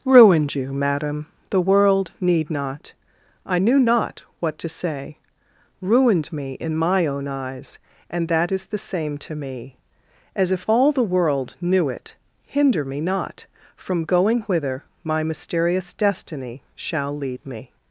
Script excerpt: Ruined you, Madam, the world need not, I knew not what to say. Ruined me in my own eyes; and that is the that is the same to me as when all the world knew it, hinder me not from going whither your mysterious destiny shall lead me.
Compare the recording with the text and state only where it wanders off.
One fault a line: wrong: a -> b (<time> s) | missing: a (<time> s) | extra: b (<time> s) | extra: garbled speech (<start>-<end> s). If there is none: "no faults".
missing: that is the (8.8 s)
wrong: when -> if (10.5 s)
wrong: your -> my (15.0 s)